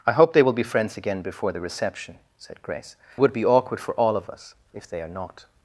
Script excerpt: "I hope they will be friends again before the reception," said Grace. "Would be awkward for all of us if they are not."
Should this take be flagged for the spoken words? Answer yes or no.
no